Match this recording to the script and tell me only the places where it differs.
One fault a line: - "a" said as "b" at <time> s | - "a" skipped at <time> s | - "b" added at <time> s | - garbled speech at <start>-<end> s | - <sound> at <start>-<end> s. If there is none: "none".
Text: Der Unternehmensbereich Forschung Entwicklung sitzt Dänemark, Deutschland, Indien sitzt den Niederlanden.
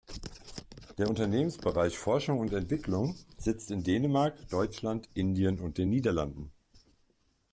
- "und" added at 2.4 s
- "in" added at 3.7 s
- "sitzt" said as "und" at 5.6 s